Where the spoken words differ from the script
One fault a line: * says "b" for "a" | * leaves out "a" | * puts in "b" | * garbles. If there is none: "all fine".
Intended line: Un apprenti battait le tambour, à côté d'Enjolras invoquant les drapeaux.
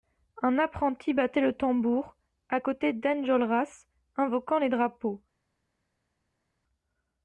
all fine